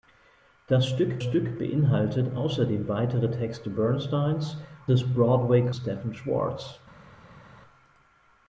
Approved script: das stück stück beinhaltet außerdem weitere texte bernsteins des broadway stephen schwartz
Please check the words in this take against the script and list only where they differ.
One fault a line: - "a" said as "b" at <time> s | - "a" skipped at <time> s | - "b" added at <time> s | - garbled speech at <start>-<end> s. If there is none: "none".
none